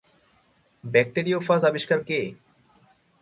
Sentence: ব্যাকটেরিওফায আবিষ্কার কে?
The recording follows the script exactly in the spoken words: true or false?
true